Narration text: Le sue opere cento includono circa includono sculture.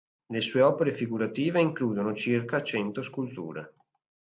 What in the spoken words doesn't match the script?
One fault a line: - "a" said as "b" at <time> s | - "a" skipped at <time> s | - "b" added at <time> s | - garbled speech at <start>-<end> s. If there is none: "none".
- "cento" said as "figurative" at 0.9 s
- "includono" said as "cento" at 2.6 s